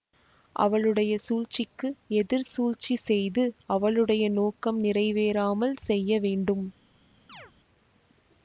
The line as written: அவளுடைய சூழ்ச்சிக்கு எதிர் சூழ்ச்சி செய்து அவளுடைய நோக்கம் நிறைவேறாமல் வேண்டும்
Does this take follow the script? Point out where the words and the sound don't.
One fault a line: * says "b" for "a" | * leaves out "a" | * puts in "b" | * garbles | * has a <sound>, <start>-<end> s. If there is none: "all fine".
* puts in "செய்ய"
* has a chirp, 7.3-7.5 s